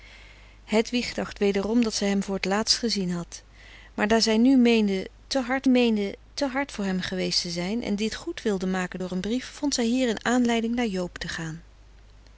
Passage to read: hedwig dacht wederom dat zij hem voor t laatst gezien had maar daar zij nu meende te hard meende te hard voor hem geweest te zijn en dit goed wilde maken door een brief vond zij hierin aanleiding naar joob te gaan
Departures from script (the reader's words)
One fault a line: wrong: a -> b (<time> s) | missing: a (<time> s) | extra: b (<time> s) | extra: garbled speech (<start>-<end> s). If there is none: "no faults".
no faults